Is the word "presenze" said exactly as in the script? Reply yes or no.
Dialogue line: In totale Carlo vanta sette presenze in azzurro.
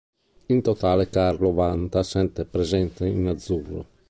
yes